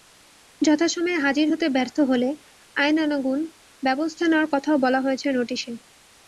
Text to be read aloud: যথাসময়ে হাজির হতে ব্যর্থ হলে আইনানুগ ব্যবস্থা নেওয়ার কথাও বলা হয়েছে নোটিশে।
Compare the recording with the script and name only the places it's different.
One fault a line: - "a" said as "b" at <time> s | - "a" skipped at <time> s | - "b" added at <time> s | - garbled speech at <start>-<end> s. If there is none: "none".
none